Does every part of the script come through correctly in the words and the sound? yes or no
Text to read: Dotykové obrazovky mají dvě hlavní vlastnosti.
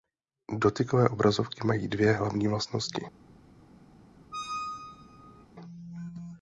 no